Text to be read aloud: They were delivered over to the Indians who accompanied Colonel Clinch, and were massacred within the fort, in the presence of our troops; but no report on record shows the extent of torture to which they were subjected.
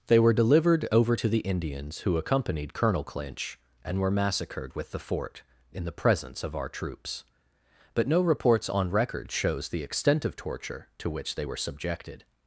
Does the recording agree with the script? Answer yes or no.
no